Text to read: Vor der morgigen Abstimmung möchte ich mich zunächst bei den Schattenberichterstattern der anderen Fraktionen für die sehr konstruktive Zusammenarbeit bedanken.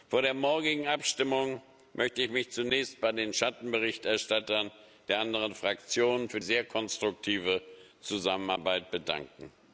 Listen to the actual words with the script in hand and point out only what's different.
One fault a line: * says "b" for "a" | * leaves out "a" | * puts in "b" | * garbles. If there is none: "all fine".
* leaves out "die"